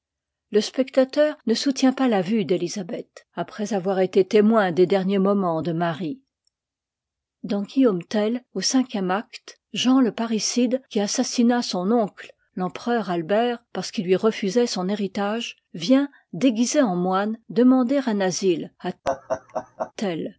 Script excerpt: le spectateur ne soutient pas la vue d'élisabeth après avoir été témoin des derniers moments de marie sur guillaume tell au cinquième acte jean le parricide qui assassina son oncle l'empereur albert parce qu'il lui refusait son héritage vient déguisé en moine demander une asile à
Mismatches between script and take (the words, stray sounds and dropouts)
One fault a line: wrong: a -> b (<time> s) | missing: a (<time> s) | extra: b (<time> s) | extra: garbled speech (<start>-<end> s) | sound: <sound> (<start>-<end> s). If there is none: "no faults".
wrong: sur -> dans (7.4 s)
wrong: une -> un (18.1 s)
sound: laugh (19.0-19.9 s)